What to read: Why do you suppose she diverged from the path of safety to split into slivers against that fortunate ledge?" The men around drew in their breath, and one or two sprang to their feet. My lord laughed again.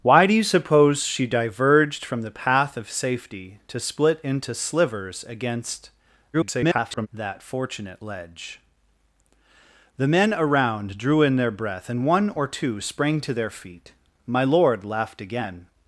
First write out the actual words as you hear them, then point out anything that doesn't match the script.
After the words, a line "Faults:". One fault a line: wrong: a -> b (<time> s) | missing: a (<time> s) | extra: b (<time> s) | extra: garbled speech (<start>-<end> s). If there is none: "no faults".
Why do you suppose she diverged from the path of safety to split into slivers against [garbled] that fortunate ledge?" The men around drew in their breath, and one or two sprang to their feet. My lord laughed again.
Faults:
extra: garbled speech (6.3-7.1 s)